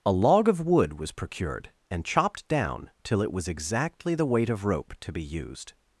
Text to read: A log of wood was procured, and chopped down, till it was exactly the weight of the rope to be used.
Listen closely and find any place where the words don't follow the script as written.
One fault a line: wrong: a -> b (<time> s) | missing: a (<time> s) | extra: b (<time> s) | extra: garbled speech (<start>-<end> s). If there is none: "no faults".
missing: the (4.7 s)